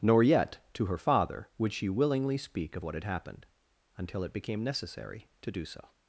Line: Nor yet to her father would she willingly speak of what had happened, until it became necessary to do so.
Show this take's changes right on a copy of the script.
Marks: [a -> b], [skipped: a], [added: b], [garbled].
Nor yet to her father would she willingly speak of what had happened, until it became necessary to do so.